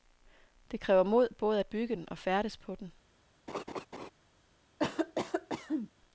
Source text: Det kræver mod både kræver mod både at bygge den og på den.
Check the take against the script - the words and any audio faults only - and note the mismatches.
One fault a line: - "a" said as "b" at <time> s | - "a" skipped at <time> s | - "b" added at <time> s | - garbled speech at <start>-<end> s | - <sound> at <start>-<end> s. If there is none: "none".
- "kræver mod både" skipped at 1.6 s
- "færdes" added at 2.2 s
- laugh at 3.5-4.1 s
- cough at 4.8-5.9 s